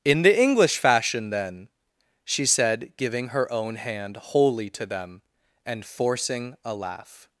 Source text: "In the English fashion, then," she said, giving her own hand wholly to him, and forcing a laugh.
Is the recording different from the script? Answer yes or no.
yes